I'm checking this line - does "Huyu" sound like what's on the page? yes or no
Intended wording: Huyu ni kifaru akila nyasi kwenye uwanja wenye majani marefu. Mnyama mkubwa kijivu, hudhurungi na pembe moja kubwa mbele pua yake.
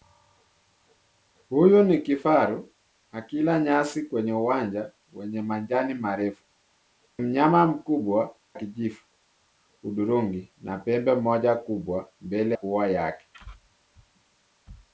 yes